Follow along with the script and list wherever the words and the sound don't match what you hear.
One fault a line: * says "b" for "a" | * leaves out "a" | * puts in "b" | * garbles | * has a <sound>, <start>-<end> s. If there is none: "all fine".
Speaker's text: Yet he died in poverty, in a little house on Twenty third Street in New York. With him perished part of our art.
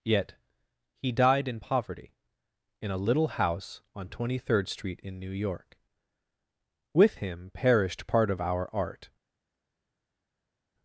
all fine